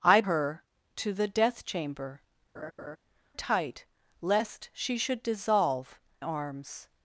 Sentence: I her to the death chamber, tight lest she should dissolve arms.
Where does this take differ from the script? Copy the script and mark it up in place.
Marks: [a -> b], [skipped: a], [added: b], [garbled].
I her to the death chamber, tight lest she should dissolve arms.